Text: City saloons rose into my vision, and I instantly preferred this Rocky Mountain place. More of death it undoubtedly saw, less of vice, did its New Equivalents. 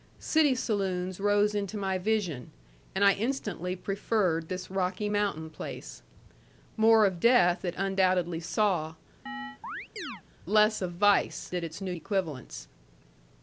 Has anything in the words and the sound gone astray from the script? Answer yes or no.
yes